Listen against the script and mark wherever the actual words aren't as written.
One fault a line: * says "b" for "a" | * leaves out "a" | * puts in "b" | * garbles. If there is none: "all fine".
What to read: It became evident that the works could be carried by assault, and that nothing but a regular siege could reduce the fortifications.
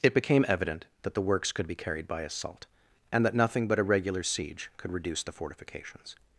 all fine